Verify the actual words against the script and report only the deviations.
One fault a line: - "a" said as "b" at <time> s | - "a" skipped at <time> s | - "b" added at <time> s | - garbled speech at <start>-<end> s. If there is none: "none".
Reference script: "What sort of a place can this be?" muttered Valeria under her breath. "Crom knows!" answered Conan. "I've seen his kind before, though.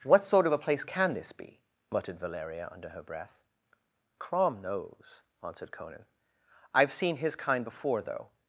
none